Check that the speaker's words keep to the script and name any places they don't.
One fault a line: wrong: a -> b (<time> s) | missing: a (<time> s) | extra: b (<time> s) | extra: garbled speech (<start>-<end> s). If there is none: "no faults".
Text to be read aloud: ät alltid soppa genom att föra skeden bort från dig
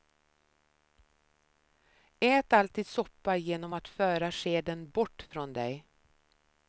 no faults